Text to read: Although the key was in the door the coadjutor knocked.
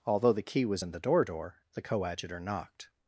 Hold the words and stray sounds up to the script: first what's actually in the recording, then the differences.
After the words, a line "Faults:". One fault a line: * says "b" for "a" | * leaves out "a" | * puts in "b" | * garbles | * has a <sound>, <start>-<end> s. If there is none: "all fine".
Although the key was in the door door the coadjutor knocked.
Faults:
* puts in "door"